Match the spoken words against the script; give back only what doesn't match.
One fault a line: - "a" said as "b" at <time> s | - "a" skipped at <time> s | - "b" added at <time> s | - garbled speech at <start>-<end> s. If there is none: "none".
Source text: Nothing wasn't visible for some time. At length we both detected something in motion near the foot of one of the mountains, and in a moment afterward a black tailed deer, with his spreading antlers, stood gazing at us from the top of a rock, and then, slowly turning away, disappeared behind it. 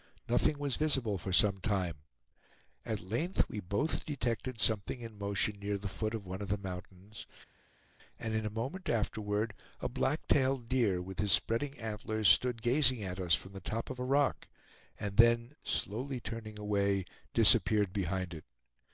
- "wasn't" said as "was" at 0.6 s